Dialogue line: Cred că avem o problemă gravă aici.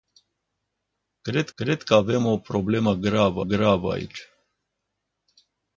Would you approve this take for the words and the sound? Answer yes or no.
no